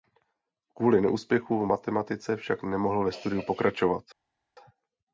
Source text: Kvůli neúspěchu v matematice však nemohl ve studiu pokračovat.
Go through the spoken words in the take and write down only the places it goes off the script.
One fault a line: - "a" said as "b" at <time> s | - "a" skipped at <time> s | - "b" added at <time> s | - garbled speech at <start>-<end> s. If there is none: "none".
none